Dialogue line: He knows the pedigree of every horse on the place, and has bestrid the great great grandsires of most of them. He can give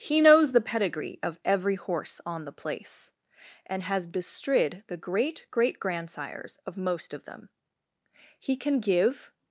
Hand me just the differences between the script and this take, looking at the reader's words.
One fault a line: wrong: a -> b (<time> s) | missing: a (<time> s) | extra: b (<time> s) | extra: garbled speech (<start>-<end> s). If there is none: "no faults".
no faults